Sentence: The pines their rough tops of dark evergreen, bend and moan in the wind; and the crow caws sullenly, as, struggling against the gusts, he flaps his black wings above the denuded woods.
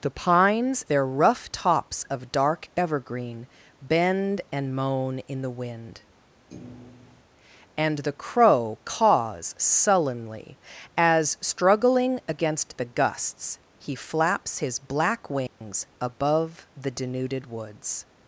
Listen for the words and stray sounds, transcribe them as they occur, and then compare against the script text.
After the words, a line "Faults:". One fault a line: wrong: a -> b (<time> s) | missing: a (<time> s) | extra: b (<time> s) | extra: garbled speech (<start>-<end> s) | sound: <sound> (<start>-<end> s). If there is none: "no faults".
The pines their rough tops of dark evergreen, bend and moan in the wind; and the crow caws sullenly, as, struggling against the gusts, he flaps his black wings above the denuded woods.
Faults:
sound: thud (6.5-7.2 s)
sound: dropout (15.5-15.6 s)